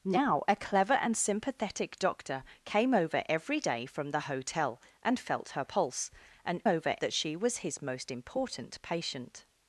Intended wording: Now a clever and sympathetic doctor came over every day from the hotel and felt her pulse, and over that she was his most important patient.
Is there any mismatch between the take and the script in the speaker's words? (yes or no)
no